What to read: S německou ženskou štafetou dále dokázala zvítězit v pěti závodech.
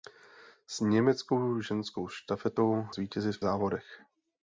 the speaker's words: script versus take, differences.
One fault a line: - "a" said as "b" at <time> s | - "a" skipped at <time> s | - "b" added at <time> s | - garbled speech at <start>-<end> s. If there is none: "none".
- "dále dokázala" skipped at 2.9 s
- "pěti" skipped at 3.4 s